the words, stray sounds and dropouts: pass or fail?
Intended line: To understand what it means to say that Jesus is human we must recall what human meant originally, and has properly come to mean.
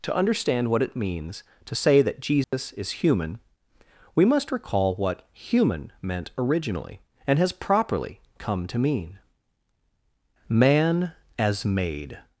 fail